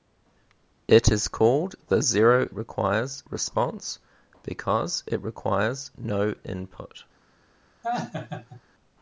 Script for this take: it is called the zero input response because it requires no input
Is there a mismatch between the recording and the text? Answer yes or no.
yes